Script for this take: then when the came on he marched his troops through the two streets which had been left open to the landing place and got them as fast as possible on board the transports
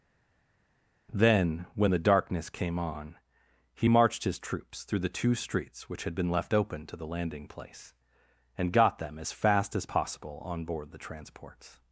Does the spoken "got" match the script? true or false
true